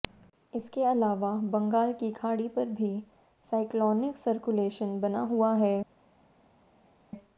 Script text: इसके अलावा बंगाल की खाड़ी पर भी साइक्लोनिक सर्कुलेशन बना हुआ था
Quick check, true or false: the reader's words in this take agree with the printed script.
false